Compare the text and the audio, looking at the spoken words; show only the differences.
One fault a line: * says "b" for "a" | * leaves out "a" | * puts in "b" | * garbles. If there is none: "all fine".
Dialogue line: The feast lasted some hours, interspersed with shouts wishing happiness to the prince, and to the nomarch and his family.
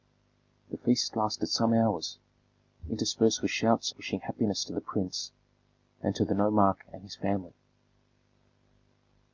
all fine